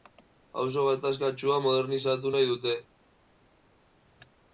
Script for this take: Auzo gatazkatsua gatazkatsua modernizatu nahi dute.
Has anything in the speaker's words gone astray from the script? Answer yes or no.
yes